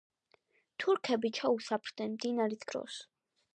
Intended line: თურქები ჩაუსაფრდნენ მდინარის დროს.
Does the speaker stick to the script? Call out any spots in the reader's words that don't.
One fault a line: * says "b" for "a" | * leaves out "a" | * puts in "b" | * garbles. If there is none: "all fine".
all fine